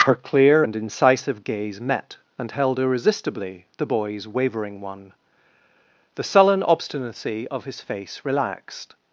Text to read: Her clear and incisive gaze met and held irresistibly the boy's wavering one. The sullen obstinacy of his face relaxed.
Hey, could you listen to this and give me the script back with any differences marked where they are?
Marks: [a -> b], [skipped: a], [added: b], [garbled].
Her clear and incisive gaze met and held irresistibly the boy's wavering one. The sullen obstinacy of his face relaxed.